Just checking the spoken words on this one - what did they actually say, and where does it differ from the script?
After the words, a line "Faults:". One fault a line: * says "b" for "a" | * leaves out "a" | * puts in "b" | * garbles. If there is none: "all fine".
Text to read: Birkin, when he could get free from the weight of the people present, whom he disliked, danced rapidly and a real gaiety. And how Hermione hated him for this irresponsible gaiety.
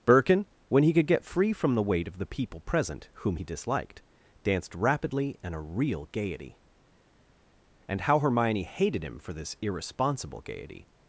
Birkin, when he could get free from the weight of the people present, whom he disliked, danced rapidly and a real gaiety. And how Hermione hated him for this irresponsible gaiety.
Faults:
all fine